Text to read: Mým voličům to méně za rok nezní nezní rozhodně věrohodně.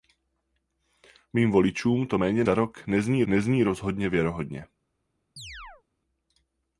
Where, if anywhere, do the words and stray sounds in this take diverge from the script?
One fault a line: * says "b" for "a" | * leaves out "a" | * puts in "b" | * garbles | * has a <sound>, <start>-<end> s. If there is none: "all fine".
* has a chirp, 5.4-5.8 s